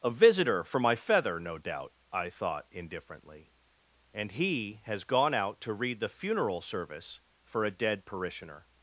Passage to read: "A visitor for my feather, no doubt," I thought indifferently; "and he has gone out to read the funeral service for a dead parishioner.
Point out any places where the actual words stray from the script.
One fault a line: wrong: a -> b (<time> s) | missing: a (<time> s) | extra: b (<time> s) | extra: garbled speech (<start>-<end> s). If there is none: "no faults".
no faults